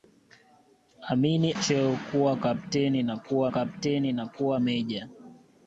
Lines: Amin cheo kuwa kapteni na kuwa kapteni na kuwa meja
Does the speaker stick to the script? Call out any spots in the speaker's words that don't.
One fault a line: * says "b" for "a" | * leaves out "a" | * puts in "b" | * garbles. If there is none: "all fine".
all fine